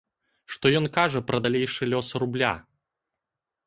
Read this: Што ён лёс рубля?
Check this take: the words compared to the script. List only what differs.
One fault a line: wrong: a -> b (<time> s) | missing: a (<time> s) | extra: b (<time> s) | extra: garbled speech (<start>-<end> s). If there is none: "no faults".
extra: кажа пра далейшы (1.0 s)